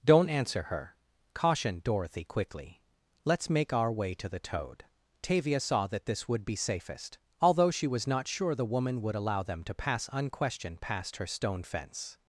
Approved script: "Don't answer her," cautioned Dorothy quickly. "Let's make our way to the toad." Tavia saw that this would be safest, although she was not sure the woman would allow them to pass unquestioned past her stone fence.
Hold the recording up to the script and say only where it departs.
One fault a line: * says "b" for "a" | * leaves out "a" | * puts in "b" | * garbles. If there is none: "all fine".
all fine